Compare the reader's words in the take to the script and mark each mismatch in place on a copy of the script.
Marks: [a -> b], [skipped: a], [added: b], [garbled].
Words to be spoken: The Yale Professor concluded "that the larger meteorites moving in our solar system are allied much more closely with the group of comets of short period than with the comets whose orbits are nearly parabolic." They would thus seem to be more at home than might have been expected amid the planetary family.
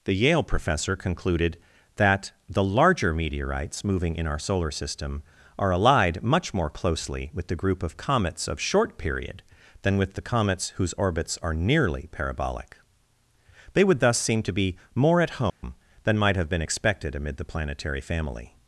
The Yale Professor concluded "that the larger meteorites moving in our solar system are allied much more closely with the group of comets of short period than with the comets whose orbits are nearly parabolic." They would thus seem to be more at home than might have been expected amid the planetary family.